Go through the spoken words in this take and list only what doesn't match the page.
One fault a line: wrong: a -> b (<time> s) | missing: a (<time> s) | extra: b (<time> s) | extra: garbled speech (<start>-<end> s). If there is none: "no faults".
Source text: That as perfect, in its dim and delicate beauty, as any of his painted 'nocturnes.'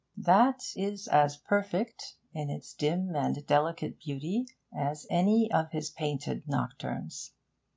extra: is (0.8 s)